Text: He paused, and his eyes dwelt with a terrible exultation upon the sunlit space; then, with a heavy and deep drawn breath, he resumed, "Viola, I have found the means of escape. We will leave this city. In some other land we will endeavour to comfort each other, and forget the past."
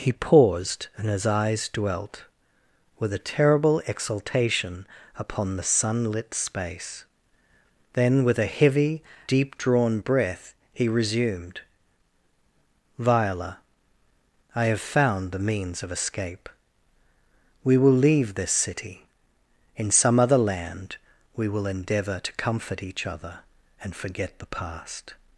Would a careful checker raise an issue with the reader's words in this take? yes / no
yes